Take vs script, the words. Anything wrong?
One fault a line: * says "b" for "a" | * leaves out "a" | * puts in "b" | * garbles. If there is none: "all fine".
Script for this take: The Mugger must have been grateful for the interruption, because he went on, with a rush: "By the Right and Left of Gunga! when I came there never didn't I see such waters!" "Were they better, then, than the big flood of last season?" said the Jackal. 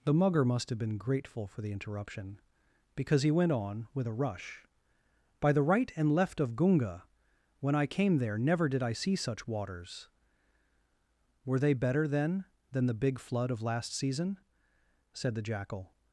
* says "did" for "didn't"